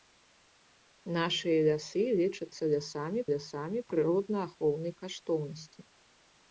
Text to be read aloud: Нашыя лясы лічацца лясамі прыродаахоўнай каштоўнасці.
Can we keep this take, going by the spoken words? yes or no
no